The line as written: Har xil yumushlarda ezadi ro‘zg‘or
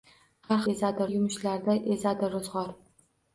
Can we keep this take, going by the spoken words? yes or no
no